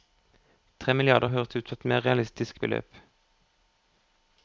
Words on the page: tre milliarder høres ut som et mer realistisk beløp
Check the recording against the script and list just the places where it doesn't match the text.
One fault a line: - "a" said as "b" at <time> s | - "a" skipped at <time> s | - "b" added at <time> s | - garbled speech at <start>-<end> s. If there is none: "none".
none